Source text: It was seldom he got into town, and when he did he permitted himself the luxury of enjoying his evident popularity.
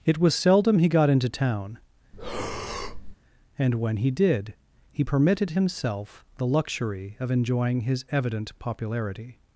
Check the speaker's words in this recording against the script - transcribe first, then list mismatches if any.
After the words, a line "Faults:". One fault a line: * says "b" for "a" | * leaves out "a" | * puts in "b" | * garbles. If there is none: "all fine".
It was seldom he got into town, and when he did he permitted himself the luxury of enjoying his evident popularity.
Faults:
all fine